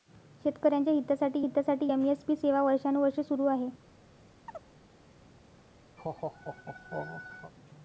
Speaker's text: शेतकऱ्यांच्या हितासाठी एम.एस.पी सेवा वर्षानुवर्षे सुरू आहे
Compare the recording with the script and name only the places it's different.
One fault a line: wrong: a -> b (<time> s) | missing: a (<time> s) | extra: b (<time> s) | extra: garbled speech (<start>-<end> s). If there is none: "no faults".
extra: हितासाठी (1.4 s)